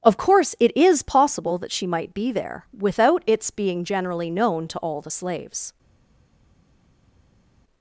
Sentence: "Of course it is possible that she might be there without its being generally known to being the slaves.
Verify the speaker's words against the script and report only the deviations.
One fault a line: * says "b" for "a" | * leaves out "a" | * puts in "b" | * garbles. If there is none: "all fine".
* says "all" for "being"